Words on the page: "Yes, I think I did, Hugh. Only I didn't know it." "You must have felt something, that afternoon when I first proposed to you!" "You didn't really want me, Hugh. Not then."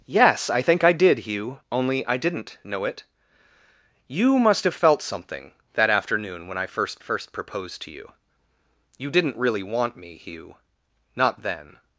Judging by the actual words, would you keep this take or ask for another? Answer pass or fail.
fail